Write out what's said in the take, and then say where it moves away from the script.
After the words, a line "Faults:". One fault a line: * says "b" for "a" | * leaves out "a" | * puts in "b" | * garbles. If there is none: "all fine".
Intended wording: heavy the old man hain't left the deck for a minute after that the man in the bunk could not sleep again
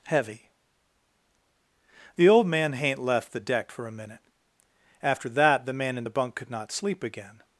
heavy the old man hain't left the deck for a minute after that the man in the bunk could not sleep again
Faults:
all fine